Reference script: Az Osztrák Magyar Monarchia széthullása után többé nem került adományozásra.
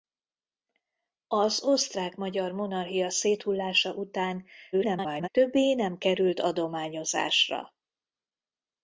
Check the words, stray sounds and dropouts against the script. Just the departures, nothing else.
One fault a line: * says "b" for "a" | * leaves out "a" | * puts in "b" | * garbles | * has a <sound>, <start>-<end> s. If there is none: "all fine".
* garbles